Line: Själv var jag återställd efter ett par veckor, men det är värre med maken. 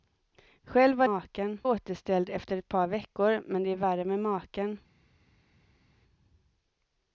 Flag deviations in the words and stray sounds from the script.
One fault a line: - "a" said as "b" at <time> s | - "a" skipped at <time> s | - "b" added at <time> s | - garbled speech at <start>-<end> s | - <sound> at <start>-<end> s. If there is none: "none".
- "jag" said as "maken" at 1.0 s